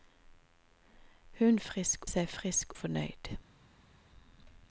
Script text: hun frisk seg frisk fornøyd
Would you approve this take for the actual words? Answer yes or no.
yes